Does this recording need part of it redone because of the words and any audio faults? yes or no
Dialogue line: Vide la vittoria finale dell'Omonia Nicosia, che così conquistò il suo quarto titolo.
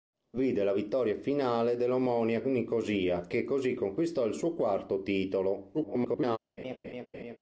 yes